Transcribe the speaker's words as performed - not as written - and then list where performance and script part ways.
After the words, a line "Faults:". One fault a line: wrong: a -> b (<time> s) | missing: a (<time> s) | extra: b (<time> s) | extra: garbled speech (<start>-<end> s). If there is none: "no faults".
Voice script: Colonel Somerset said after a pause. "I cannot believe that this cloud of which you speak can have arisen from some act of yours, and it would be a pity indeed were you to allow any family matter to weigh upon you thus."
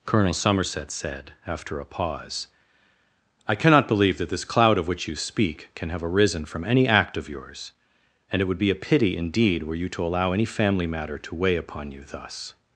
Colonel Somerset said after a pause. "I cannot believe that this cloud of which you speak can have arisen from any act of yours, and it would be a pity indeed were you to allow any family matter to weigh upon you thus."
Faults:
wrong: some -> any (6.6 s)